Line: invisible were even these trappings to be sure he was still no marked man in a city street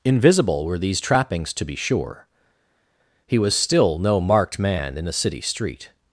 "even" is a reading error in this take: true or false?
true